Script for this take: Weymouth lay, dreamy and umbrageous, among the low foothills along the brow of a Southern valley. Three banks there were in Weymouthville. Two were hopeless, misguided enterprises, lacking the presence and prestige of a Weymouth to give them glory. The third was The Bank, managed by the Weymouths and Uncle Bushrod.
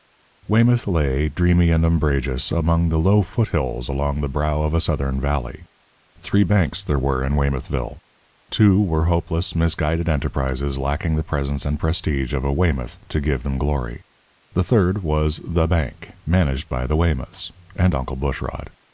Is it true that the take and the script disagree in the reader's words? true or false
false